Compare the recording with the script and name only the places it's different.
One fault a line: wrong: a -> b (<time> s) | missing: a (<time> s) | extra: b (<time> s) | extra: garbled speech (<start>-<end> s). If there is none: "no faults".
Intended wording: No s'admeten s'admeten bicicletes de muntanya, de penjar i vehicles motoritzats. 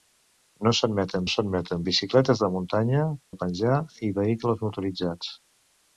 no faults